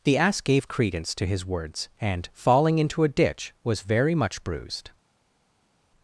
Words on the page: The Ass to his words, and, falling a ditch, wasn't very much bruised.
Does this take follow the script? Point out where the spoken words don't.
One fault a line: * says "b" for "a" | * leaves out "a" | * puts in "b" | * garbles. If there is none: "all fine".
* puts in "gave credence"
* puts in "into"
* says "was" for "wasn't"